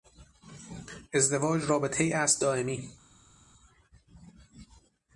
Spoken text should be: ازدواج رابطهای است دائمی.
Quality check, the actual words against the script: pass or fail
pass